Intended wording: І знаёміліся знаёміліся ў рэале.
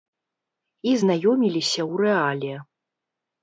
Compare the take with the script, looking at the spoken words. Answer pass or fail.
fail